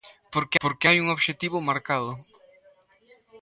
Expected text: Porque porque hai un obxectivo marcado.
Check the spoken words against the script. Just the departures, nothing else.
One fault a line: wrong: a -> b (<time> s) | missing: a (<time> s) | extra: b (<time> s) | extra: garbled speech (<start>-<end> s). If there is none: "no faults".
no faults